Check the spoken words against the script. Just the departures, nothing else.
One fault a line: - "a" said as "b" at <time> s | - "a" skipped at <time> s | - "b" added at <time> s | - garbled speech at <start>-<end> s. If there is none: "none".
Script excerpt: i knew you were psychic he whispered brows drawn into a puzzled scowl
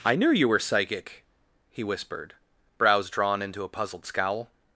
none